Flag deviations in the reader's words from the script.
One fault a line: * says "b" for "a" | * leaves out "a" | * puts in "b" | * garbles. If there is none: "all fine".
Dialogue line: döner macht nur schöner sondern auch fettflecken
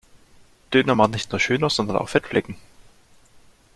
* puts in "nicht"